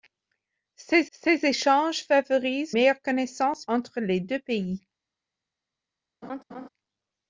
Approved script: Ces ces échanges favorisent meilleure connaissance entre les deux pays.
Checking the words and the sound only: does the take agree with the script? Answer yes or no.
no